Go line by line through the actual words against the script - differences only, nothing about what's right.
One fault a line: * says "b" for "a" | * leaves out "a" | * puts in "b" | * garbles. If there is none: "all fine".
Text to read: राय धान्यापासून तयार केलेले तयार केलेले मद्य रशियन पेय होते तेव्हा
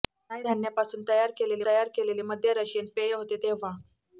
all fine